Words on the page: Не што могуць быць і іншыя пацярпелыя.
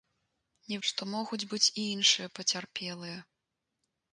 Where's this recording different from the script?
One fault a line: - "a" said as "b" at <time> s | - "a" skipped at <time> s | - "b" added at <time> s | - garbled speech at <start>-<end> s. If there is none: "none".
none